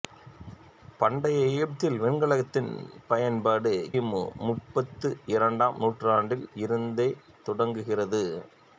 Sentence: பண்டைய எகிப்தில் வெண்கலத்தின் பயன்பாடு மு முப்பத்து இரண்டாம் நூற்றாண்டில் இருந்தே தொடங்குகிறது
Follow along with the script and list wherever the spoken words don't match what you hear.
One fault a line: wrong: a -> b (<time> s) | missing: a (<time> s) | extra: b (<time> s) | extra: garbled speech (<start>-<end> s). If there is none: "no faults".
no faults